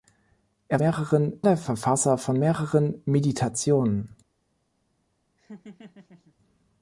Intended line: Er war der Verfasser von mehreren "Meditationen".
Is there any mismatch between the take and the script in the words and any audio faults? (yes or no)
yes